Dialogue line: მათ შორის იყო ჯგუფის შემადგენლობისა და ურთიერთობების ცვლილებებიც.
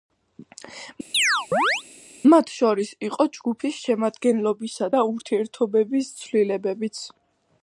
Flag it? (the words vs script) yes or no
no